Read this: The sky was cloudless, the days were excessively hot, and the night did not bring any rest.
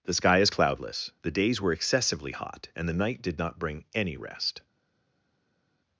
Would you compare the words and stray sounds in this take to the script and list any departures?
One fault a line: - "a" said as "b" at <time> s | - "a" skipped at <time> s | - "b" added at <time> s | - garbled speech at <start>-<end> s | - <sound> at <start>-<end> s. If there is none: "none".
- "was" said as "is" at 0.4 s